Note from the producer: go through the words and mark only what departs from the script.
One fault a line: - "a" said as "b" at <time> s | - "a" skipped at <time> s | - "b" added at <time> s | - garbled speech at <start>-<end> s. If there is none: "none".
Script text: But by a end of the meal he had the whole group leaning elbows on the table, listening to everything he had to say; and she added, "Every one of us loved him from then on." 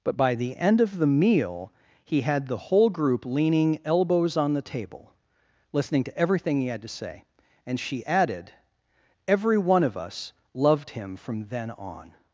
- "a" said as "the" at 0.3 s